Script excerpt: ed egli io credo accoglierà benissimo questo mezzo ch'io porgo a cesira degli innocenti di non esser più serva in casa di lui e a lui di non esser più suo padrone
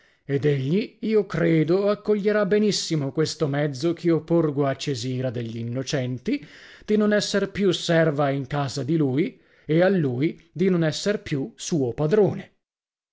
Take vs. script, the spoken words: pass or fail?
pass